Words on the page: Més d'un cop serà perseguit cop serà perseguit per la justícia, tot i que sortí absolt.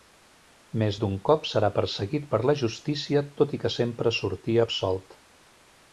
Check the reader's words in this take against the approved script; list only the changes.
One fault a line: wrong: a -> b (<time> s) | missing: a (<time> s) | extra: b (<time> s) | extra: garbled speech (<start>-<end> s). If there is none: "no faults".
missing: cop serà perseguit (2.3 s)
extra: sempre (3.8 s)